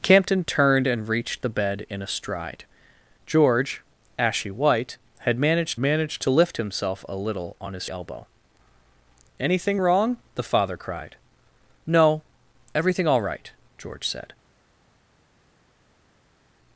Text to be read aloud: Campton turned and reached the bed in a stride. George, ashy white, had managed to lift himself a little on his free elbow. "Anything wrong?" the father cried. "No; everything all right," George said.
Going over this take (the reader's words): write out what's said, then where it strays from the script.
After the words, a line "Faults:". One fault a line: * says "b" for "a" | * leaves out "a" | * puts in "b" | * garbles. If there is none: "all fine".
Campton turned and reached the bed in a stride. George, ashy white, had managed managed to lift himself a little on his elbow. "Anything wrong?" the father cried. "No; everything all right," George said.
Faults:
* puts in "managed"
* leaves out "free"